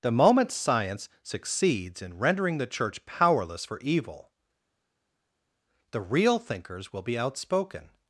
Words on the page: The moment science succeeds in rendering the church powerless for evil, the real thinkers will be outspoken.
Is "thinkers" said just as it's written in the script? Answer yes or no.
yes